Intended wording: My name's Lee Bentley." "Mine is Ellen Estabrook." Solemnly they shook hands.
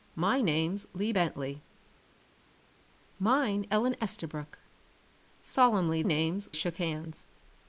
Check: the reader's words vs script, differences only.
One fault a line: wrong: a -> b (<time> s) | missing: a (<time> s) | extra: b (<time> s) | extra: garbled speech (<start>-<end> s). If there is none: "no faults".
missing: is (3.6 s)
wrong: they -> name's (6.0 s)